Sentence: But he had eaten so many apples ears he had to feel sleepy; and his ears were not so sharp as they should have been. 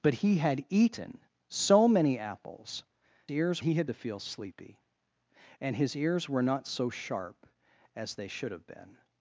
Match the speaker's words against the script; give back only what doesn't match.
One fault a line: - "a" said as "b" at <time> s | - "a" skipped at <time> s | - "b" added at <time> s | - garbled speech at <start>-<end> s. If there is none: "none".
none